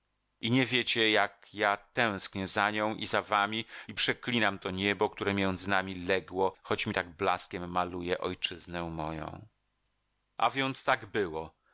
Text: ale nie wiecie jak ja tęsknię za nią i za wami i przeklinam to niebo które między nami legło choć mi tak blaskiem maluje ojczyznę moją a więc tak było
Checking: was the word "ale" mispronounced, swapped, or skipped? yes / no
yes